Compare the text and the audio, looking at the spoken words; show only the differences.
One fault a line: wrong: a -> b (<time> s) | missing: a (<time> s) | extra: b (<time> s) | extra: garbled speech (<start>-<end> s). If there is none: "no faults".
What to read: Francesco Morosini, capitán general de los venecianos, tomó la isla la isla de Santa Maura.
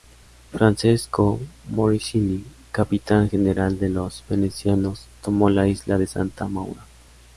missing: la isla (6.0 s)